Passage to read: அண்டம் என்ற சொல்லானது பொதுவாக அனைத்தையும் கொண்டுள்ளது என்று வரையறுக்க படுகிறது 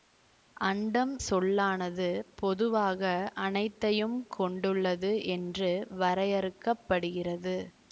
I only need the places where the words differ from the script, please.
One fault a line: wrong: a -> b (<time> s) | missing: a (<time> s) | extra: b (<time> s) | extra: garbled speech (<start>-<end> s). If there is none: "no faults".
missing: என்ற (1.1 s)